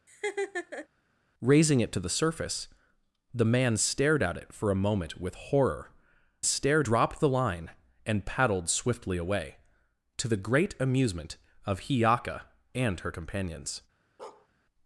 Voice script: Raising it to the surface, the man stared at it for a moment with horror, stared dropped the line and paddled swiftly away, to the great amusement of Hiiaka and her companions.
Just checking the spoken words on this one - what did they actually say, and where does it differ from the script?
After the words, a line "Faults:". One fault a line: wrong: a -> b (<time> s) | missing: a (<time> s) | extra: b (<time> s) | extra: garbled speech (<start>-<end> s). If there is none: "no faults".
Raising it to the surface, the man stared at it for a moment with horror, stared dropped the line and paddled swiftly away, to the great amusement of Hiiaka and her companions.
Faults:
no faults